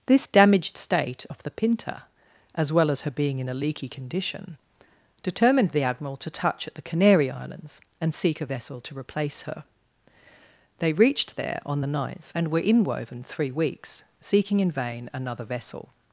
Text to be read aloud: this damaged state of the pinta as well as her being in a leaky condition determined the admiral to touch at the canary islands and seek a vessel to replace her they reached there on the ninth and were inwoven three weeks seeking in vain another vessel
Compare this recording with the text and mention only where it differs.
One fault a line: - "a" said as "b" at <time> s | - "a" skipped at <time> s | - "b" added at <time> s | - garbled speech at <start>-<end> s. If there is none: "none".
none